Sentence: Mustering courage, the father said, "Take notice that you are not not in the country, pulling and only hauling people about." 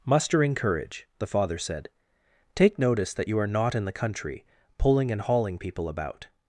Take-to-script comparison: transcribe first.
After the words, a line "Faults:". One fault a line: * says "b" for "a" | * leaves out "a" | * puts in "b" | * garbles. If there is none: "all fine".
Mustering courage, the father said, "Take notice that you are not in the country, pulling and hauling people about."
Faults:
* leaves out "not"
* leaves out "only"